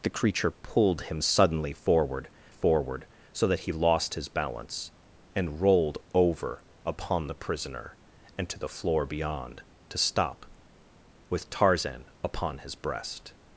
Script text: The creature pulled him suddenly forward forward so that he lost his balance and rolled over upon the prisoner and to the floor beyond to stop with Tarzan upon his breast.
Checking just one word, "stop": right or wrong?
right